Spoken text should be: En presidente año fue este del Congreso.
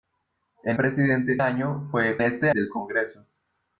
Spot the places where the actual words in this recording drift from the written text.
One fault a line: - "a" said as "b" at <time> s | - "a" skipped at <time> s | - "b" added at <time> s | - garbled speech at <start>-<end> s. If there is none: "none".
none